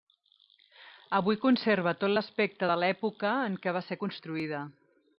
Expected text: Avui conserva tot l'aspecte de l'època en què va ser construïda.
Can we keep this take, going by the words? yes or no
yes